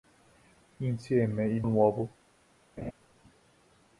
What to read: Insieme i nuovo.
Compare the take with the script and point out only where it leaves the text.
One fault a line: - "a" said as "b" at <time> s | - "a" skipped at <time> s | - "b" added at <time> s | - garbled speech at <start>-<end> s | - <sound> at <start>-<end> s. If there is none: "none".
- laugh at 2.8-2.9 s